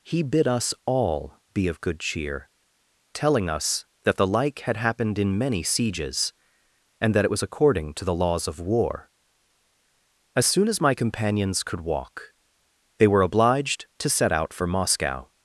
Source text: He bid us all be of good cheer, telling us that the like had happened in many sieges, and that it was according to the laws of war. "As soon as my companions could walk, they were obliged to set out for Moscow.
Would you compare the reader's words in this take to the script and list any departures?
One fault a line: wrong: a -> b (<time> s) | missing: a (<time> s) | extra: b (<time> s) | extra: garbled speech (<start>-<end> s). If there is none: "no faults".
no faults